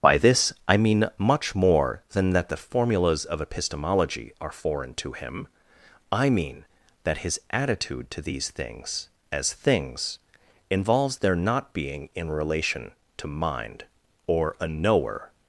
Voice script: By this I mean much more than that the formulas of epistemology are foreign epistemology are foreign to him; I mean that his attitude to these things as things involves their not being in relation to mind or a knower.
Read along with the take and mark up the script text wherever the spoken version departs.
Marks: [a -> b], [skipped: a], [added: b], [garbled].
By this I mean much more than that the formulas of epistemology are foreign [skipped: epistemology are foreign] to him; I mean that his attitude to these things as things involves their not being in relation to mind or a knower.